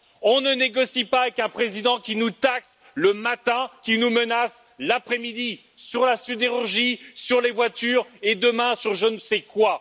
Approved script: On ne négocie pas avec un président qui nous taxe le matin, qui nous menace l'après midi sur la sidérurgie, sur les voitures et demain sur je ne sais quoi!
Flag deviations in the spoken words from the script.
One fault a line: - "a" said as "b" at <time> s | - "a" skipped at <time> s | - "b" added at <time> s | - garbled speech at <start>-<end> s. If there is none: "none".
none